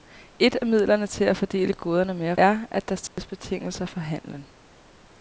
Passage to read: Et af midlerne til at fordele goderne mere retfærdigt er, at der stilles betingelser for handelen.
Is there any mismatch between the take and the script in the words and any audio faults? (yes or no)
yes